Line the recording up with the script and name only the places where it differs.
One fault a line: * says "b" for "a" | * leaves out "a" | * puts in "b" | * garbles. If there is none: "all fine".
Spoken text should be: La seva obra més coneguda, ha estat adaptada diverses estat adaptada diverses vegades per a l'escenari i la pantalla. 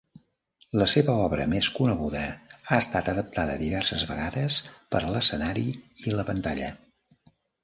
* leaves out "estat adaptada diverses"